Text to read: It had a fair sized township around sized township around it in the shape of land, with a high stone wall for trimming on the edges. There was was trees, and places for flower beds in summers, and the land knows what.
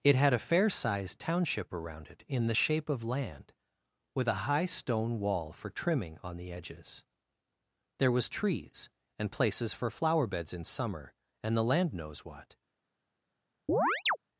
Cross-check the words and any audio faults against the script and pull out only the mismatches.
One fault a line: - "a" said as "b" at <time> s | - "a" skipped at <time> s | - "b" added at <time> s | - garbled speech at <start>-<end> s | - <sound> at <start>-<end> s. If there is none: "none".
- "sized township around" skipped at 2.1 s
- "was" skipped at 8.3 s
- "summers" said as "summer" at 10.6 s
- chirp at 13.7-14.2 s